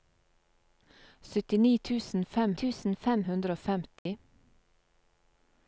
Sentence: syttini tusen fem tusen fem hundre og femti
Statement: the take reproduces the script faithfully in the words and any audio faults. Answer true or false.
false